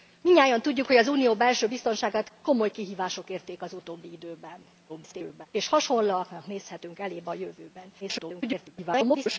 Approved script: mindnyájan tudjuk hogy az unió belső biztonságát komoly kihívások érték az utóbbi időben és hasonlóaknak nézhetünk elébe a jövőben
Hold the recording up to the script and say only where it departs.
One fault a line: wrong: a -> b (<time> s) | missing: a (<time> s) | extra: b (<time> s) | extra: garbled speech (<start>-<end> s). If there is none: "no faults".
extra: garbled speech (4.9-5.5 s)
extra: garbled speech (8.0-9.4 s)